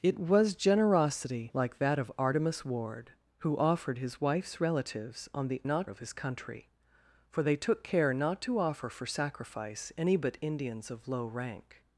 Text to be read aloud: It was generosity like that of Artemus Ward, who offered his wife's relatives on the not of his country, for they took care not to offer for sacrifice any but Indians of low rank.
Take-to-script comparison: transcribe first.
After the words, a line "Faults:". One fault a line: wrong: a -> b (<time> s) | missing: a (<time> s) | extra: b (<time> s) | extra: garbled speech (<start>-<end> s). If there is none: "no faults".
It was generosity like that of Artemus Ward, who offered his wife's relatives on the not of his country, for they took care not to offer for sacrifice any but Indians of low rank.
Faults:
no faults